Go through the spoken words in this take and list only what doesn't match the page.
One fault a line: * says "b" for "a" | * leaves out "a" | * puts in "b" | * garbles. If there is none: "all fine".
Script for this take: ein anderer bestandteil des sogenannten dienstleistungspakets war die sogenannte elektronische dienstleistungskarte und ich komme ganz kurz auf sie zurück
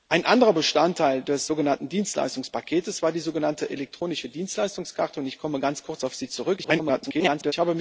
* garbles